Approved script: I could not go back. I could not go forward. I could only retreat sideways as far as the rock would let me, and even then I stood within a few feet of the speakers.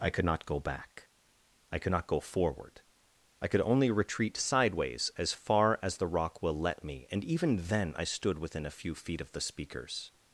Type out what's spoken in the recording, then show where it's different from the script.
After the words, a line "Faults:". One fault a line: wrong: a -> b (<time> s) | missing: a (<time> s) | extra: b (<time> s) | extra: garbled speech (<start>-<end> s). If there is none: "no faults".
I could not go back. I could not go forward. I could only retreat sideways as far as the rock will let me, and even then I stood within a few feet of the speakers.
Faults:
wrong: would -> will (6.4 s)